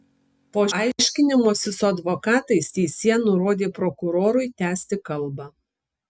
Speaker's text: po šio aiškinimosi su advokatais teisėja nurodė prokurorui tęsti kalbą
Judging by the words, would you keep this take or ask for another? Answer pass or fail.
fail